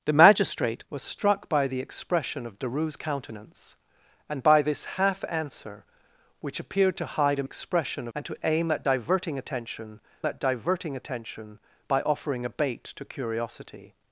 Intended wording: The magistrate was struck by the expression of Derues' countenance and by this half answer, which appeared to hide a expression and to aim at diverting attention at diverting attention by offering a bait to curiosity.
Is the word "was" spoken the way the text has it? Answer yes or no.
yes